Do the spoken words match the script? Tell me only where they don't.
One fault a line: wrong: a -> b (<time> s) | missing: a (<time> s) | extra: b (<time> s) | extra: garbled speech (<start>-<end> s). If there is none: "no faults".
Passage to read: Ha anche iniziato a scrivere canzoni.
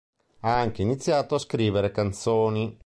no faults